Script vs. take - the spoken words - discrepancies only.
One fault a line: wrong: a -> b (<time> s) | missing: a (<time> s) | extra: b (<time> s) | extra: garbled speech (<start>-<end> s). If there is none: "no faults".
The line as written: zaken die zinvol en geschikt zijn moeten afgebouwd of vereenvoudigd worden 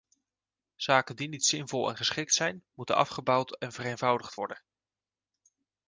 extra: niet (1.3 s)
wrong: of -> en (3.6 s)